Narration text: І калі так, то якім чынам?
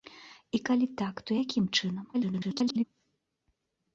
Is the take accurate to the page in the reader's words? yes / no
no